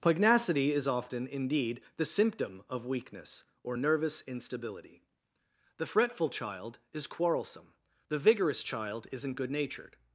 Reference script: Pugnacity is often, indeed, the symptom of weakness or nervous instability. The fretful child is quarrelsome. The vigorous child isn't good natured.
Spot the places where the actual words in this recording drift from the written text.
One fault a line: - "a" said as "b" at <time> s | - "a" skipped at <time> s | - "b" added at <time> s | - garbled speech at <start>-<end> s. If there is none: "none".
none